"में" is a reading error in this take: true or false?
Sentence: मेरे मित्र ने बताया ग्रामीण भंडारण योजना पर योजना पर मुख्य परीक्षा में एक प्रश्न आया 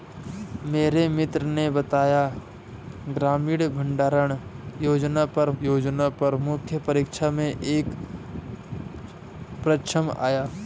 false